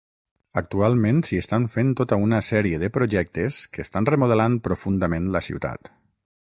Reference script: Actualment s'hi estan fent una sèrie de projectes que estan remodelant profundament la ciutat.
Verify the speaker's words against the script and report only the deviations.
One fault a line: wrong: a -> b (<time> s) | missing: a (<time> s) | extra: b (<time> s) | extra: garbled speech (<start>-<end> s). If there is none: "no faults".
extra: tota (2.0 s)